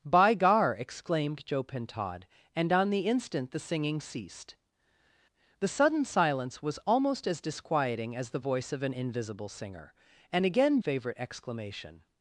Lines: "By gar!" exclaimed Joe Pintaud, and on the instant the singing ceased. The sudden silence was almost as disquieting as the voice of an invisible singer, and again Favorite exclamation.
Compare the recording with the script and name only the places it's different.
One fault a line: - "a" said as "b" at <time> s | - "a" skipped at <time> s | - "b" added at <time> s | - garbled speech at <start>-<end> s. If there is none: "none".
none